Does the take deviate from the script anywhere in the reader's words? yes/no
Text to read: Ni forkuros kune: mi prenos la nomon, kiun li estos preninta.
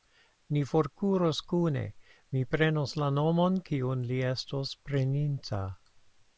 no